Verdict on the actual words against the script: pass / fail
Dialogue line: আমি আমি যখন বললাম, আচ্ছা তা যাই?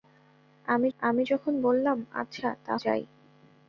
pass